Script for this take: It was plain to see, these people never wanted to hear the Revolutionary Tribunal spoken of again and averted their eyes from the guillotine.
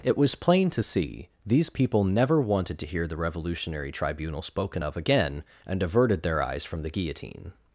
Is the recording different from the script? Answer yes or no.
no